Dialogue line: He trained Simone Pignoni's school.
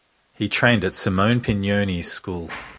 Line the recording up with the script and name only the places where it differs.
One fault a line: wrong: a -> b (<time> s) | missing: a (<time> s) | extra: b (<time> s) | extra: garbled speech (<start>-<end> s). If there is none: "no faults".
extra: at (0.8 s)